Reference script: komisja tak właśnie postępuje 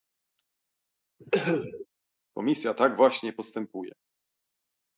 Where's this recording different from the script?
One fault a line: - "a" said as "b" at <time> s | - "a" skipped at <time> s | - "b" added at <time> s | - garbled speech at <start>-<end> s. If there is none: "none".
none